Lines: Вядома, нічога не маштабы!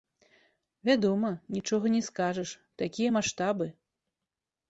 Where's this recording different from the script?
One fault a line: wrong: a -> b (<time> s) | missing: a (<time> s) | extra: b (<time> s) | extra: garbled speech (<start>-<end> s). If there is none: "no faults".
extra: скажаш такія (2.1 s)